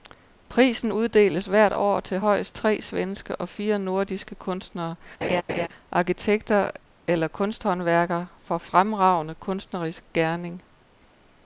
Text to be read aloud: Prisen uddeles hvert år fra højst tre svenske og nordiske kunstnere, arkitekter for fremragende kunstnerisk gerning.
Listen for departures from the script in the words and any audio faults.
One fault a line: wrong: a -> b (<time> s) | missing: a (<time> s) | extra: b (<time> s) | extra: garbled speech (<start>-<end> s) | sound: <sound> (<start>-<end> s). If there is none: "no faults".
wrong: fra -> til (2.0 s)
extra: fire (3.5 s)
sound: laugh (5.2-5.7 s)
extra: eller kunsthåndværkere (7.1 s)